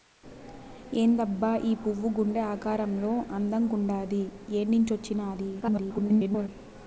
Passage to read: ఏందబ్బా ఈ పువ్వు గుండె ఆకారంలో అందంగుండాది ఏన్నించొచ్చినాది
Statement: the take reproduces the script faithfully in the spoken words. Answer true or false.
false